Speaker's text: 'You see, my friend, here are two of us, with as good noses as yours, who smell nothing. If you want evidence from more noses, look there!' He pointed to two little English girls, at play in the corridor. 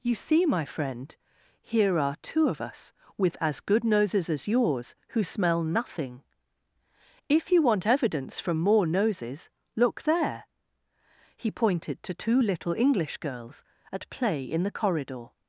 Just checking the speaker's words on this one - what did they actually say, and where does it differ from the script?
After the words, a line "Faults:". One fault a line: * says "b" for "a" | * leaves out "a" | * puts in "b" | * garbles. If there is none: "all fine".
'You see, my friend, here are two of us, with as good noses as yours, who smell nothing. If you want evidence from more noses, look there!' He pointed to two little English girls, at play in the corridor.
Faults:
all fine